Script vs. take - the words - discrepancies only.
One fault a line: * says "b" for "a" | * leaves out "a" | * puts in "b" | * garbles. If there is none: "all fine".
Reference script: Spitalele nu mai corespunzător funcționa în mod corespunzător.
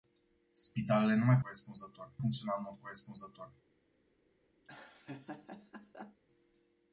all fine